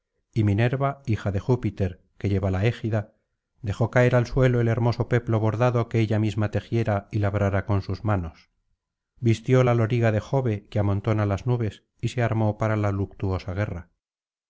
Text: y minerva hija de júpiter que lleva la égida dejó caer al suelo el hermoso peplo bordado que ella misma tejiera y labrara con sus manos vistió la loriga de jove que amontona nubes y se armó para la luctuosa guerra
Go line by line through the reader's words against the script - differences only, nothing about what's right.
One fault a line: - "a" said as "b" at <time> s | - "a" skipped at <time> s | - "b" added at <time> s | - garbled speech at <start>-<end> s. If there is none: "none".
- "las" added at 11.2 s